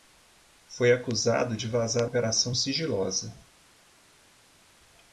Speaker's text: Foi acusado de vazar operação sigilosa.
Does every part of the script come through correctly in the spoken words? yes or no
yes